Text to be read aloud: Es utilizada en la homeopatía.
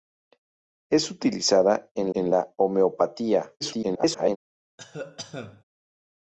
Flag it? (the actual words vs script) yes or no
yes